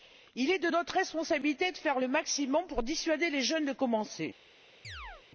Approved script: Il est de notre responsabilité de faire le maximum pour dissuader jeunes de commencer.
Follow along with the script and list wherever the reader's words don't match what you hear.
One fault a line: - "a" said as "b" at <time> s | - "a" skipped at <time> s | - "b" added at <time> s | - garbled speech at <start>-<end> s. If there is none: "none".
- "les" added at 3.3 s